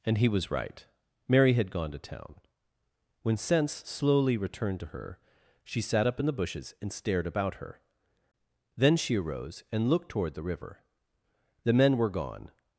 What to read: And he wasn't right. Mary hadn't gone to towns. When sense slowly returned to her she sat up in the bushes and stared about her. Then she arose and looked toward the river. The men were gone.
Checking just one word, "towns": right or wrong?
wrong